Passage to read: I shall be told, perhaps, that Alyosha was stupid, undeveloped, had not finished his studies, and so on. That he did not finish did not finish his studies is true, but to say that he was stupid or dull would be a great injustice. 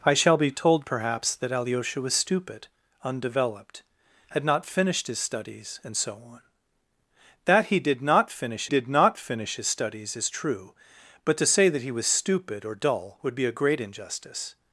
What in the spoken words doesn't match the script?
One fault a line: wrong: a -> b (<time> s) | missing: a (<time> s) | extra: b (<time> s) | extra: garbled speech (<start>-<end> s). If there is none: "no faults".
no faults